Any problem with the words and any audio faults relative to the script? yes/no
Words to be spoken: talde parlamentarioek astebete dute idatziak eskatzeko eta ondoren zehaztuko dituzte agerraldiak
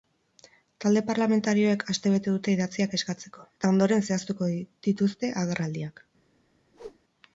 yes